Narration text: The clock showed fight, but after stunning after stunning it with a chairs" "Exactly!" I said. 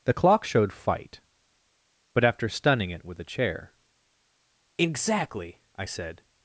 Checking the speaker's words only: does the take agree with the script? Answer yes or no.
no